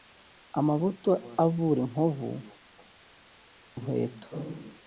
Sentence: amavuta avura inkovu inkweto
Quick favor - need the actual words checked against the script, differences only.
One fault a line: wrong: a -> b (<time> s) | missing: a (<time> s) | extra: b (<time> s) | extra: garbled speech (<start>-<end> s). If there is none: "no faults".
no faults